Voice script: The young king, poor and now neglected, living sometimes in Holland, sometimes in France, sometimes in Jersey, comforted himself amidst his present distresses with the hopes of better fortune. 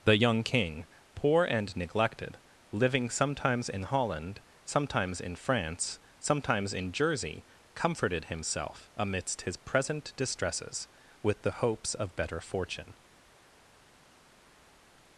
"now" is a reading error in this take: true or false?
true